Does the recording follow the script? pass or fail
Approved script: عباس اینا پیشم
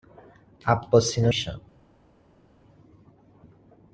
pass